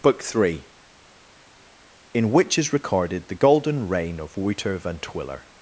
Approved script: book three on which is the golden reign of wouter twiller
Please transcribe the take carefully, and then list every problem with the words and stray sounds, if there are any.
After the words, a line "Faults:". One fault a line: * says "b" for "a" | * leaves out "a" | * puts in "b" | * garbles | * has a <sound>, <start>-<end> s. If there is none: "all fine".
book three in which is recorded the golden reign of wouter van twiller
Faults:
* says "in" for "on"
* puts in "recorded"
* puts in "van"